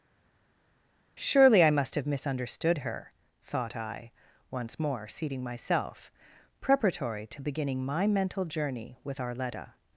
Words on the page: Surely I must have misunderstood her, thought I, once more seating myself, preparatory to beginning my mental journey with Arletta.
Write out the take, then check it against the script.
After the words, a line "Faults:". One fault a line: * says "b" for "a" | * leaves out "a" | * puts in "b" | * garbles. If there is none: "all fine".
Surely I must have misunderstood her, thought I, once more seating myself, preparatory to beginning my mental journey with Arletta.
Faults:
all fine